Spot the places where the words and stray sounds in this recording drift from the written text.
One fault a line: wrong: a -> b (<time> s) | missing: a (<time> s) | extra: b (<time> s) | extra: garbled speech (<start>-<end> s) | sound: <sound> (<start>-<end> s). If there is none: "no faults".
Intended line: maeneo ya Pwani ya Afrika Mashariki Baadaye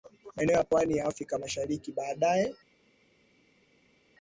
no faults